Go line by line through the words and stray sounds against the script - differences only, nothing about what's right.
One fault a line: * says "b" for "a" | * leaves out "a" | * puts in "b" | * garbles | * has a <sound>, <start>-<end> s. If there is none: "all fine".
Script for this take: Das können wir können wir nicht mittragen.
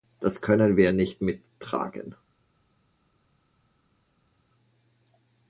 * leaves out "können wir"